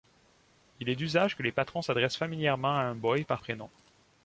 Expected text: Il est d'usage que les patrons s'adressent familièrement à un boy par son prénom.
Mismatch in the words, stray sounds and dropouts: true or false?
true